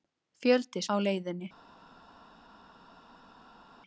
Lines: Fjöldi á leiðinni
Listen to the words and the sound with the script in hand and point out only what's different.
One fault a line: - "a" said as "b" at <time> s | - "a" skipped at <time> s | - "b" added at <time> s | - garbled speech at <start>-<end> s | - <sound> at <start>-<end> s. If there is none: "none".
none